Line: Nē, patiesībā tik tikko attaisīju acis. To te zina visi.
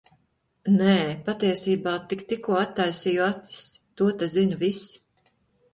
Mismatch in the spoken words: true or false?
false